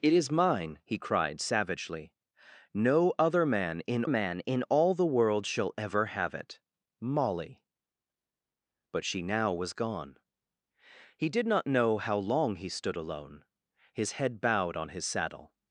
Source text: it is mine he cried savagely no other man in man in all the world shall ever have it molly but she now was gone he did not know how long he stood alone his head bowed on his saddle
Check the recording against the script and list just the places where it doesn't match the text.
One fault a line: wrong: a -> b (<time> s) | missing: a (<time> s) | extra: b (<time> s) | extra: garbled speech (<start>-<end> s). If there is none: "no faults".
no faults